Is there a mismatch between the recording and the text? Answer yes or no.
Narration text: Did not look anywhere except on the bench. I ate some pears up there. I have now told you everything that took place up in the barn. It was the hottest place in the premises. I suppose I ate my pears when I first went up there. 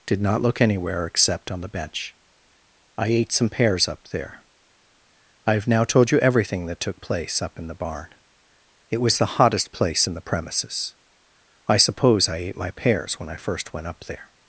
no